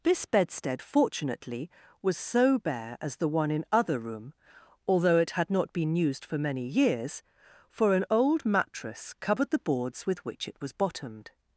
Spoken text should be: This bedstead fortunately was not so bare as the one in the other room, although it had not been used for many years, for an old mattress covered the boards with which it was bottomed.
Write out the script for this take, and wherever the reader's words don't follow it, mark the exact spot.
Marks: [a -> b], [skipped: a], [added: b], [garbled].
This bedstead fortunately was [skipped: not] so bare as the one in [skipped: the] other room, although it had not been used for many years, for an old mattress covered the boards with which it was bottomed.